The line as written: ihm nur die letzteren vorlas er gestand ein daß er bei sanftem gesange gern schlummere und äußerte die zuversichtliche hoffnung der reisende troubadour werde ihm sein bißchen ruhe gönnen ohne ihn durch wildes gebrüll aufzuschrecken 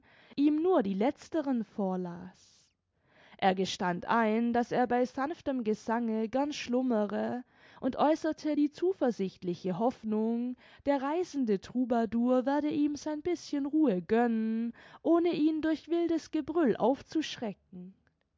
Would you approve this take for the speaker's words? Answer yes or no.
yes